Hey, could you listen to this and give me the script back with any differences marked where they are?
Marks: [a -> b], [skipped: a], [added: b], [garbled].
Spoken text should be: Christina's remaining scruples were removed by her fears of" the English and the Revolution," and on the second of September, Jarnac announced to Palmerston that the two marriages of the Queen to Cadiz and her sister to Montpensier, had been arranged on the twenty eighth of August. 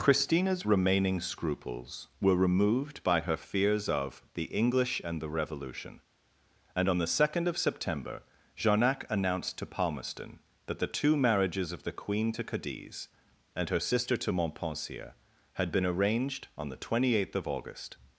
Christina's remaining scruples were removed by her fears of" the English and the Revolution," and on the second of September, Jarnac announced to Palmerston that the two marriages of the Queen to Cadiz and her sister to Montpensier, had been arranged on the twenty eighth of August.